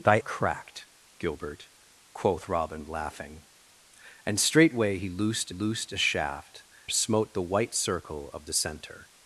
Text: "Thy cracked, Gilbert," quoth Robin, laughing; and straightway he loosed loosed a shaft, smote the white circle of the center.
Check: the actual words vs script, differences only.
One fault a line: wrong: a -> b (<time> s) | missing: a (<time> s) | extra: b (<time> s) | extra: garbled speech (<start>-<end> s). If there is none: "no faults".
no faults